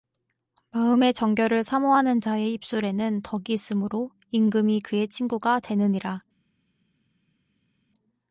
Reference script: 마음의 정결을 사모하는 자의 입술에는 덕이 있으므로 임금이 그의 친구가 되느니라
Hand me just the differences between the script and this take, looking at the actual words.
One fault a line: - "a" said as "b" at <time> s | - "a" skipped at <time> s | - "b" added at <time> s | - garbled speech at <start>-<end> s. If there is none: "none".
none